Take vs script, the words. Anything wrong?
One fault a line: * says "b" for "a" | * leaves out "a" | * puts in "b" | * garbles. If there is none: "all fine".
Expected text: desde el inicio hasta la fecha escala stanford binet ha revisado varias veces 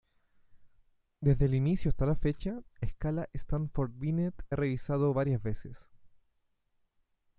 all fine